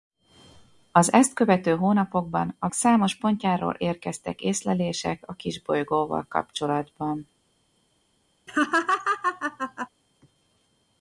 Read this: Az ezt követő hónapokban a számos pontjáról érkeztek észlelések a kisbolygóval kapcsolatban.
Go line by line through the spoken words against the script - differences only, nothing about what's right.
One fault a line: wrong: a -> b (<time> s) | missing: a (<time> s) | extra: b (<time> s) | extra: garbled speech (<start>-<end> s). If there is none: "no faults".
no faults